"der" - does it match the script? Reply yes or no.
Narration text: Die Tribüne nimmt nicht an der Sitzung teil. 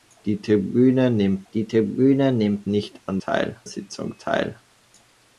no